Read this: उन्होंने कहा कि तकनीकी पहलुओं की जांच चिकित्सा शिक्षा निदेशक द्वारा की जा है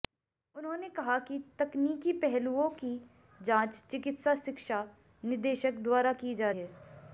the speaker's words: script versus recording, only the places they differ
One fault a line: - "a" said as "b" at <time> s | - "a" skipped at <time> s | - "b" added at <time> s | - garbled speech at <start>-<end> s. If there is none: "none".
none